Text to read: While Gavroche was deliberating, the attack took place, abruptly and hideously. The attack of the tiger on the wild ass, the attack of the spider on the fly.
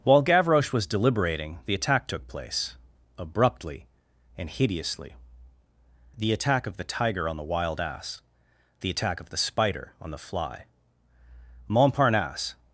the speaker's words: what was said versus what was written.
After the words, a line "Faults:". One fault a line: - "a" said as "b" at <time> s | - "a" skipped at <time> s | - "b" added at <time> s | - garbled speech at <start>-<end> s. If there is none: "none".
While Gavroche was deliberating, the attack took place, abruptly and hideously. The attack of the tiger on the wild ass, the attack of the spider on the fly. Montparnasse
Faults:
- "Montparnasse" added at 11.7 s